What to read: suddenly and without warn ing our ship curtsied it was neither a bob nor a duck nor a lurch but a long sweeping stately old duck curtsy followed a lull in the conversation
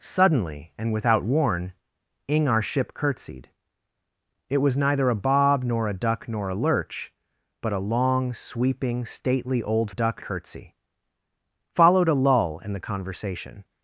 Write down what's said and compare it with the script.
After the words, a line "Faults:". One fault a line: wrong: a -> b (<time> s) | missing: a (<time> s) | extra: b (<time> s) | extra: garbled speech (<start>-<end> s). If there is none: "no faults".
suddenly and without warn ing our ship curtsied it was neither a bob nor a duck nor a lurch but a long sweeping stately old duck curtsy followed a lull in the conversation
Faults:
no faults